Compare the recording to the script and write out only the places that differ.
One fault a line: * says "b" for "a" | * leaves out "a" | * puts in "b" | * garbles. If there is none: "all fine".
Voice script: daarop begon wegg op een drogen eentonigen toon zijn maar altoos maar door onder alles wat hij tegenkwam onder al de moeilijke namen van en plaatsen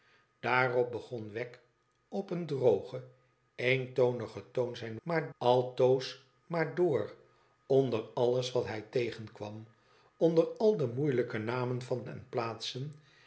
all fine